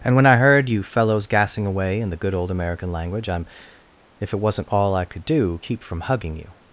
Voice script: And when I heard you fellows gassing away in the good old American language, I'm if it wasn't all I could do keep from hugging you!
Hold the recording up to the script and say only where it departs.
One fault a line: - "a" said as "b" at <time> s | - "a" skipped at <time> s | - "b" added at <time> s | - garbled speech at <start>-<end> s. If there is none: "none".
none